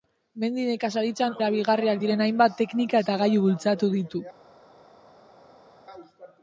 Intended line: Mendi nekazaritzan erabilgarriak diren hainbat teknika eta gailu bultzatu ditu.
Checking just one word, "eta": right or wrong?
right